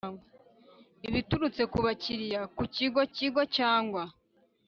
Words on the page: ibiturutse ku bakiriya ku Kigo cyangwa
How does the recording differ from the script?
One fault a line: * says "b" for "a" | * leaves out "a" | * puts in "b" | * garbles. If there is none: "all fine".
* puts in "Kigo"